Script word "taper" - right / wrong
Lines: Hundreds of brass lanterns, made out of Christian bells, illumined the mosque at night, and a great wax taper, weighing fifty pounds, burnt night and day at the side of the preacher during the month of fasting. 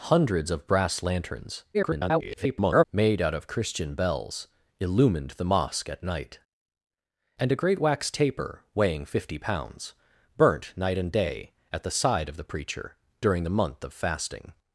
right